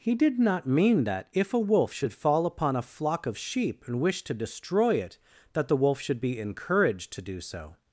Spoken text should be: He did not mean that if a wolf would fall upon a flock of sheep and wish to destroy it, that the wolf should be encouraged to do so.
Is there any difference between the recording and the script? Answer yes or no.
yes